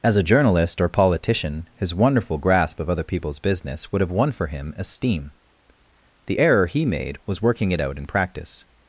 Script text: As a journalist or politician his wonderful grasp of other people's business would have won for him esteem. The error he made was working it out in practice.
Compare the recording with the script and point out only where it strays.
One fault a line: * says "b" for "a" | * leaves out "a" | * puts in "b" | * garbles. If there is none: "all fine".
all fine